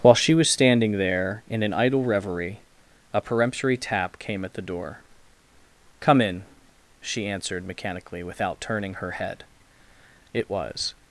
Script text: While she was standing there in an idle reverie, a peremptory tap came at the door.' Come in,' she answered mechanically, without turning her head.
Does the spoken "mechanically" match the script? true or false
true